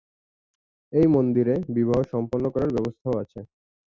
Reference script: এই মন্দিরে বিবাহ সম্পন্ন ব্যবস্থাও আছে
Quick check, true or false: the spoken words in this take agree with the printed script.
false